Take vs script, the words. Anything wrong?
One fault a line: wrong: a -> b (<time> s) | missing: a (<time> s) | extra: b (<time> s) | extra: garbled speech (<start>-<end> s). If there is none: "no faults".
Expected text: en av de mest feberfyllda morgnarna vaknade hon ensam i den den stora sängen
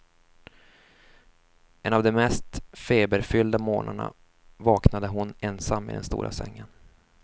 missing: den (6.0 s)